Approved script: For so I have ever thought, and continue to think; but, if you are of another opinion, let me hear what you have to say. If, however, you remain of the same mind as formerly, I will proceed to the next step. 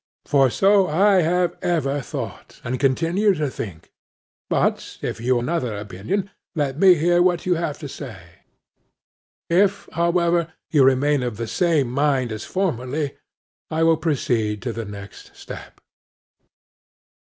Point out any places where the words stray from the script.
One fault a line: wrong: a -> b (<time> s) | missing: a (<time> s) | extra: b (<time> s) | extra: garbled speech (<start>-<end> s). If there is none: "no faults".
missing: are of (5.4 s)